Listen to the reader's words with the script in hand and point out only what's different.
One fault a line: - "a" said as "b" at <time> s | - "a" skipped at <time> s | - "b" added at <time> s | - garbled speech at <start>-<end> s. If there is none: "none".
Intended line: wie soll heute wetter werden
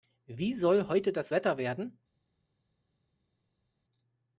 - "das" added at 1.1 s